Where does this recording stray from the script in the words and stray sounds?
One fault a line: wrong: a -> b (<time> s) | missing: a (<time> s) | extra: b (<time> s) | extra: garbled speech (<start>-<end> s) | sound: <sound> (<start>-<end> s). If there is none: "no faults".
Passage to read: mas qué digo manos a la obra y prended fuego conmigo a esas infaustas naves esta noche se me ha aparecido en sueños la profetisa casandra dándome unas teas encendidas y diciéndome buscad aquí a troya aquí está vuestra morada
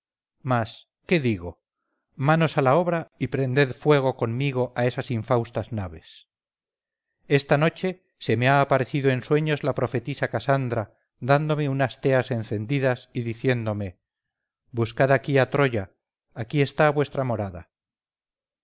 no faults